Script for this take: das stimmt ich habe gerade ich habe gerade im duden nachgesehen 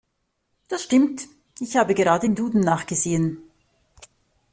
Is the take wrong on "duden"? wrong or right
right